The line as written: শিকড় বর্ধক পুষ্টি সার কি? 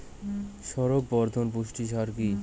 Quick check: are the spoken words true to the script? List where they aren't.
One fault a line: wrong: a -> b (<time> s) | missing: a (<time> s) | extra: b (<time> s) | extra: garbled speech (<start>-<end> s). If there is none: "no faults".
no faults